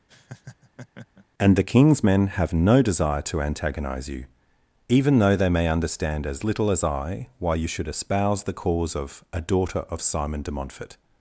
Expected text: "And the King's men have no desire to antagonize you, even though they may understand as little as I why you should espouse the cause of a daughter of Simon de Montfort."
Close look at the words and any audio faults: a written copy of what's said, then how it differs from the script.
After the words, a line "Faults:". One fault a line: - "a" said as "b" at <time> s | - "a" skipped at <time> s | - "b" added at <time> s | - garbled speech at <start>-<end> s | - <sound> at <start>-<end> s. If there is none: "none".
"And the King's men have no desire to antagonize you, even though they may understand as little as I why you should espouse the cause of a daughter of Simon de Montfort."
Faults:
- laugh at 0.1-1.3 s